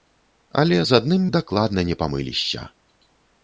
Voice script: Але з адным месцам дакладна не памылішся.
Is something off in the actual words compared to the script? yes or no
yes